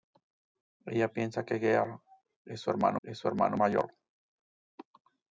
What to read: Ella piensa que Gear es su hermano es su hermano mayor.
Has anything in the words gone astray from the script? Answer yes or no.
no